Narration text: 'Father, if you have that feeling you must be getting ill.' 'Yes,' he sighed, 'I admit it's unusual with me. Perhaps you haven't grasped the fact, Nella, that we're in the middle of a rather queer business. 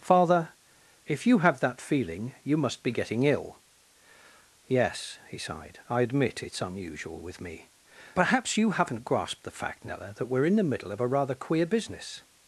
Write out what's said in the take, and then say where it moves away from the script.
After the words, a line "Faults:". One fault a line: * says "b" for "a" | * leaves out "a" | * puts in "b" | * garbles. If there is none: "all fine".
'Father, if you have that feeling you must be getting ill.' 'Yes,' he sighed, 'I admit it's unusual with me. Perhaps you haven't grasped the fact, Nella, that we're in the middle of a rather queer business.
Faults:
all fine